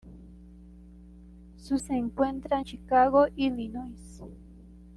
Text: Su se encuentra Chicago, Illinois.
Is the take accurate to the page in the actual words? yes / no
yes